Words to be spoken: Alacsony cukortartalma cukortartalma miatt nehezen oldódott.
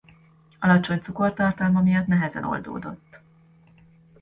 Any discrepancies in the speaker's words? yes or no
yes